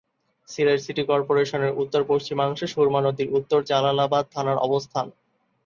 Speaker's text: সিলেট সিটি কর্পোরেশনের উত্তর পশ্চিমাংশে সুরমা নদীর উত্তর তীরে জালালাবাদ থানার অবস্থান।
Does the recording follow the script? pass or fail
fail